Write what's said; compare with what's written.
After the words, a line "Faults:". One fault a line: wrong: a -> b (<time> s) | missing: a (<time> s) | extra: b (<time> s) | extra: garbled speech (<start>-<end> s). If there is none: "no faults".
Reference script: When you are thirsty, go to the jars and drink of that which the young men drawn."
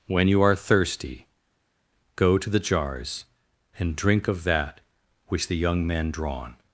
When you are thirsty, go to the jars and drink of that which the young men drawn."
Faults:
no faults